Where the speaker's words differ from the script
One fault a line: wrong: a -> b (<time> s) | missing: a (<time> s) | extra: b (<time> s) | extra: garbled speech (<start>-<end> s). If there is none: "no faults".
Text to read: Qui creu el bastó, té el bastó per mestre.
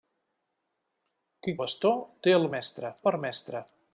missing: creu el (1.6 s)
wrong: bastó -> mestre (2.6 s)